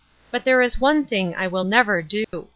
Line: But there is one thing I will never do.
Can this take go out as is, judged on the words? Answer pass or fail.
pass